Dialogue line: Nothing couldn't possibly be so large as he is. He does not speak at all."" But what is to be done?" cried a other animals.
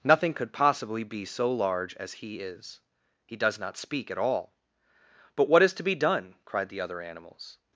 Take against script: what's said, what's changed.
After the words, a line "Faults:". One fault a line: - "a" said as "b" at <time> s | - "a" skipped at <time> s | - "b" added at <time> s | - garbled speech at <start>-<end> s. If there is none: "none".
Nothing could possibly be so large as he is. He does not speak at all."" But what is to be done?" cried the other animals.
Faults:
- "couldn't" said as "could" at 0.3 s
- "a" said as "the" at 6.7 s